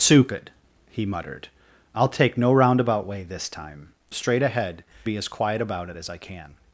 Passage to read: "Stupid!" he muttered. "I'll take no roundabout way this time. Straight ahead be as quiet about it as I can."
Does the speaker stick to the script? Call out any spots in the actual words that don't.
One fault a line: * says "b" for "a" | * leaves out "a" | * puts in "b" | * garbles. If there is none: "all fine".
all fine